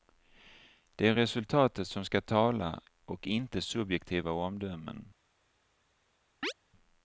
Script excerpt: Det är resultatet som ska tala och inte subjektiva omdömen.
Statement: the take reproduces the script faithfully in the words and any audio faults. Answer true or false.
false